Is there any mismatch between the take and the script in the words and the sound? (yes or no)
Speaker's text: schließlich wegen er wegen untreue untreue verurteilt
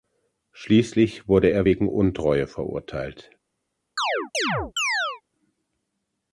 yes